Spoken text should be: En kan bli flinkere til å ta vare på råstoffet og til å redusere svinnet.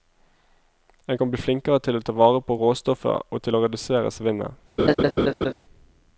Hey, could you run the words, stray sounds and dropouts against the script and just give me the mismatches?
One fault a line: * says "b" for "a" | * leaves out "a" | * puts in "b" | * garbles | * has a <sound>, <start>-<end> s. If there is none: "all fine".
* has a laugh, 4.8-5.5 s